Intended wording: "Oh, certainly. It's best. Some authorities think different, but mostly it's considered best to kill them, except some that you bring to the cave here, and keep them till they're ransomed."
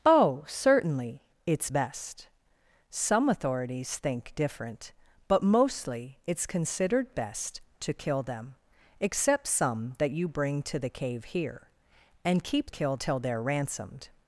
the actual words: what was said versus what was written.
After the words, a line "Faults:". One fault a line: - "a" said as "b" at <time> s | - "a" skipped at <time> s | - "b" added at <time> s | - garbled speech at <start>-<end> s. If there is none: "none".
"Oh, certainly. It's best. Some authorities think different, but mostly it's considered best to kill them, except some that you bring to the cave here, and keep kill till they're ransomed."
Faults:
- "them" said as "kill" at 12.7 s